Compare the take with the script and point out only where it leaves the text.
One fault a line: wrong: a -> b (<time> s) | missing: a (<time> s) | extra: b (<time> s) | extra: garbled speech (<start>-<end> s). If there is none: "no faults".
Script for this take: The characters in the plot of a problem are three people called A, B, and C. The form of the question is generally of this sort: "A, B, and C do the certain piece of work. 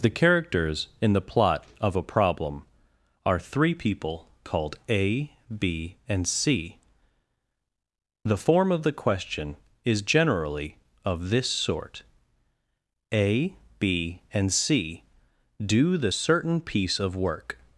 no faults